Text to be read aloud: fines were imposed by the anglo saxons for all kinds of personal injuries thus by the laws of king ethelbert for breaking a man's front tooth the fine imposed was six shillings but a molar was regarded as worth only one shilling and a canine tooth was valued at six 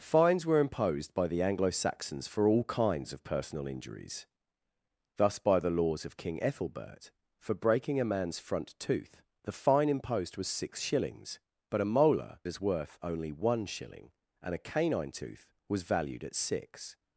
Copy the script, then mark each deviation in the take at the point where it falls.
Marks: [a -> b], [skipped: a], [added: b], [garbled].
fines were imposed by the anglo saxons for all kinds of personal injuries thus by the laws of king ethelbert for breaking a man's front tooth the fine imposed was six shillings but a molar [skipped: was regarded] as worth only one shilling and a canine tooth was valued at six